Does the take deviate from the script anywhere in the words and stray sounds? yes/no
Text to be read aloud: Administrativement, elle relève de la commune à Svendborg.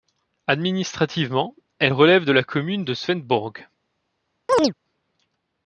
yes